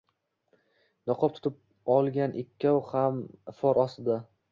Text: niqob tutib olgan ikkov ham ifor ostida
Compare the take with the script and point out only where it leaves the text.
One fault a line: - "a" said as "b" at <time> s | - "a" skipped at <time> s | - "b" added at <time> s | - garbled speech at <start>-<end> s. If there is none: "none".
none